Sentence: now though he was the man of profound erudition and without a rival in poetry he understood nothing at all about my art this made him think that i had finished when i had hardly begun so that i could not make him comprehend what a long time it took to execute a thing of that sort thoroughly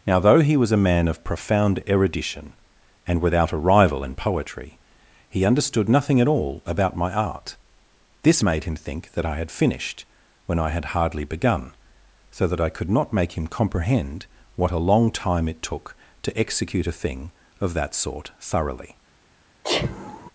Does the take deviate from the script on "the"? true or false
true